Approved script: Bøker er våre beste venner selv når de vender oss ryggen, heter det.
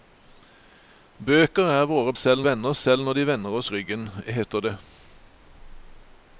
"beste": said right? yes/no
no